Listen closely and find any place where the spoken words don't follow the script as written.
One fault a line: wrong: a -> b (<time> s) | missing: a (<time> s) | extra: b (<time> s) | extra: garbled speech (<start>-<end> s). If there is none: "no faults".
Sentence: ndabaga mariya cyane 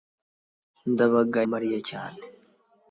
no faults